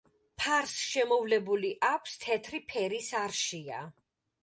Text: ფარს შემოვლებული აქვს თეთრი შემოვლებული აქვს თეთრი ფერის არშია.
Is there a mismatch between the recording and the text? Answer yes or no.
yes